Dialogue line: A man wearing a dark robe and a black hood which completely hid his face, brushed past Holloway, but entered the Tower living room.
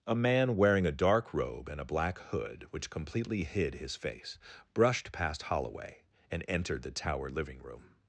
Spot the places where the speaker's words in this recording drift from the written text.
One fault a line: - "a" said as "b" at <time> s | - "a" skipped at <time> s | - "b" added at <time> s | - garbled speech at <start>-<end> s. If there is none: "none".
- "but" said as "and" at 6.3 s